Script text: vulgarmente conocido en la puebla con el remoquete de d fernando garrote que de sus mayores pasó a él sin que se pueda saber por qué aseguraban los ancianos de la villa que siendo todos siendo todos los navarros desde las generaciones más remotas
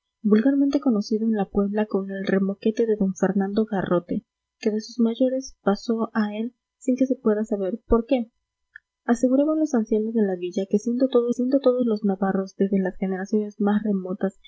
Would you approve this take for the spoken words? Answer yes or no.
yes